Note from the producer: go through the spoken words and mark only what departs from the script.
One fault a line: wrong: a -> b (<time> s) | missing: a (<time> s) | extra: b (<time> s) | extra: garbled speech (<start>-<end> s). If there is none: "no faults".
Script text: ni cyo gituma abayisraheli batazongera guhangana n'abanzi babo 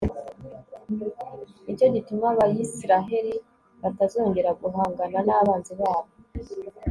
no faults